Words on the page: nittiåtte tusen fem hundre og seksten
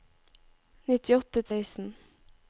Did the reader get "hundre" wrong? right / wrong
wrong